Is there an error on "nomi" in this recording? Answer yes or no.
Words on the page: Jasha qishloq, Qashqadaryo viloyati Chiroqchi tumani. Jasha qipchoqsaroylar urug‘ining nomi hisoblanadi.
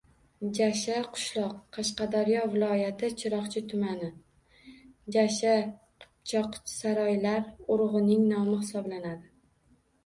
no